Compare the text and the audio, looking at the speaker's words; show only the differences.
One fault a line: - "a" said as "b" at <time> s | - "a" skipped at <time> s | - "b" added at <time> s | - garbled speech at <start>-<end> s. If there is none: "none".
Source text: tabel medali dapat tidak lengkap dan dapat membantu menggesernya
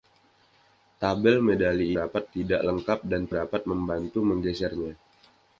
none